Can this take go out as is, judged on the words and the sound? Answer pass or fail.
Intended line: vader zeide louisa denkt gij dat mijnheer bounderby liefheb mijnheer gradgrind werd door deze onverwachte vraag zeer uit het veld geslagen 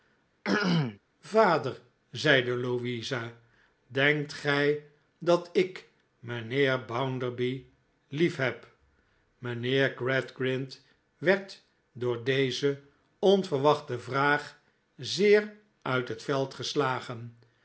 fail